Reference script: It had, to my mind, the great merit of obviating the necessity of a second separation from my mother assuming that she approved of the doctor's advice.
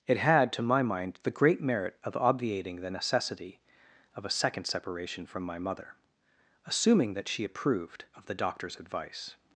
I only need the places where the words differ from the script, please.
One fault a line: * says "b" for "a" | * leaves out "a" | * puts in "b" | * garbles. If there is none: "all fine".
all fine